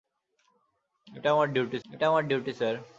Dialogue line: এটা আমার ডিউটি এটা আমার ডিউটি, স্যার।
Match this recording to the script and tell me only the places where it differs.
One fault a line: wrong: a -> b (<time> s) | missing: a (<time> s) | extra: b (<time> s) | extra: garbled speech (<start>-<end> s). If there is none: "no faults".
no faults